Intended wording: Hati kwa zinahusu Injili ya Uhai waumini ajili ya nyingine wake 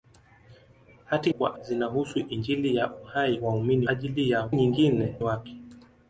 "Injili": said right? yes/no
yes